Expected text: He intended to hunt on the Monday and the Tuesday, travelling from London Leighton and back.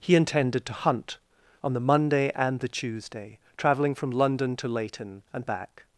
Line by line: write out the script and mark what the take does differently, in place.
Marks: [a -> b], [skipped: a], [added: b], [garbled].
He intended to hunt on the Monday and the Tuesday, travelling from London [added: to] Leighton and back.